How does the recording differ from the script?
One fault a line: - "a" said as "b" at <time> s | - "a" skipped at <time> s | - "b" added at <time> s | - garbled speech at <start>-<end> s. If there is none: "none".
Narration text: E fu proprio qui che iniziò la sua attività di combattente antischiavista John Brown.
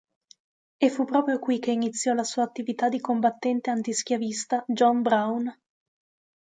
none